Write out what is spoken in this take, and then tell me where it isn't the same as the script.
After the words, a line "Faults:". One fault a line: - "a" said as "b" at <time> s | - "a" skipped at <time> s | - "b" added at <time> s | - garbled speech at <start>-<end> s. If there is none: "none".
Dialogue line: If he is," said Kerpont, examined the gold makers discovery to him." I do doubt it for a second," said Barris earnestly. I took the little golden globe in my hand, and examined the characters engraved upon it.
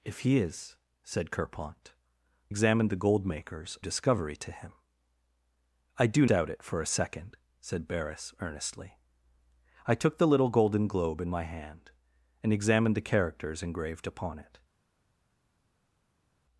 If he is," said Kerpont, examined the gold makers discovery to him." I do doubt it for a second," said Barris earnestly. I took the little golden globe in my hand, and examined the characters engraved upon it.
Faults:
none